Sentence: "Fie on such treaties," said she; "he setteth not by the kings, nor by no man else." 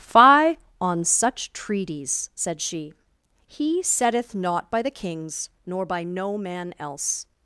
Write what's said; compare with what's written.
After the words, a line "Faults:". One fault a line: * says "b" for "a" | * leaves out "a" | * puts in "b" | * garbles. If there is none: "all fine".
"Fie on such treaties," said she; "he setteth not by the kings, nor by no man else."
Faults:
all fine